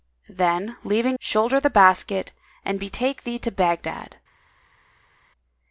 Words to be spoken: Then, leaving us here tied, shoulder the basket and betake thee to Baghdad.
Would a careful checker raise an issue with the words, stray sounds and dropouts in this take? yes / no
yes